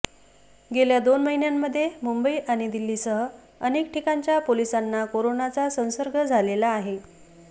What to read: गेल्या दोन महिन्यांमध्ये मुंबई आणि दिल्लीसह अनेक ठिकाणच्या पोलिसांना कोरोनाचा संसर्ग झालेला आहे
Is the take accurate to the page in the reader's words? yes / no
yes